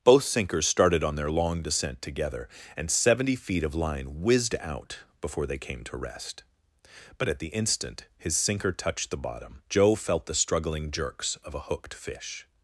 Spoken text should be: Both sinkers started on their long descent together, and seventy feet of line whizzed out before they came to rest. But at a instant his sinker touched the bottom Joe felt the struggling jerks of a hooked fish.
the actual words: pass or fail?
fail